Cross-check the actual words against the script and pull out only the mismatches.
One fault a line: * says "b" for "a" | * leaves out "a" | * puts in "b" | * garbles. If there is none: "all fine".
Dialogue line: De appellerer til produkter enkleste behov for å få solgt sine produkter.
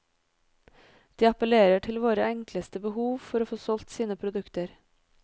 * says "våre" for "produkter"